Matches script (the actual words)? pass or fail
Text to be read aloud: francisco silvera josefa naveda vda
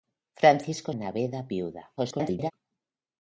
fail